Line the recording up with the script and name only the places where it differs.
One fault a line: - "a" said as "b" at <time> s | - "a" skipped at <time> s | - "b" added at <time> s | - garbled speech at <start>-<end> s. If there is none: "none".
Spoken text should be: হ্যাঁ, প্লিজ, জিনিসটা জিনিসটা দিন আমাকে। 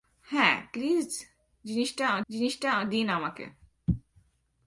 none